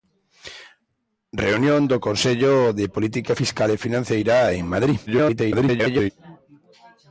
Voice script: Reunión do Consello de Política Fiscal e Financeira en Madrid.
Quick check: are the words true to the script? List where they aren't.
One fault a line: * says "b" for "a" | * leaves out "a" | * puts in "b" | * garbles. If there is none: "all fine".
* garbles